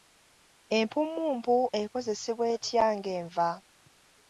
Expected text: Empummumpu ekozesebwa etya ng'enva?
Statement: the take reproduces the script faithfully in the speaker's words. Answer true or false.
true